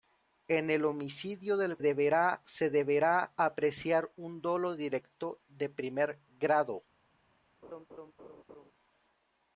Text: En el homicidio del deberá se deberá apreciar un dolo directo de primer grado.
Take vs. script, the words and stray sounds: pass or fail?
fail